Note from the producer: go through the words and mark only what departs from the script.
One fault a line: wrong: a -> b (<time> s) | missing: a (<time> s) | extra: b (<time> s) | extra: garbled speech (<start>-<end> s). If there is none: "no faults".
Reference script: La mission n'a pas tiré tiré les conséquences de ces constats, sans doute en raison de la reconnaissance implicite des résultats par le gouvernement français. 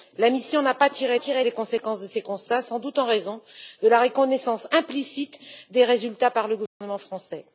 no faults